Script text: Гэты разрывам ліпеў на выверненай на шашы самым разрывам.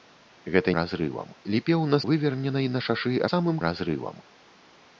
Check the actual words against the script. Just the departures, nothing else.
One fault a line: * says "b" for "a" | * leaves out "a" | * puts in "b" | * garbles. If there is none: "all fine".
all fine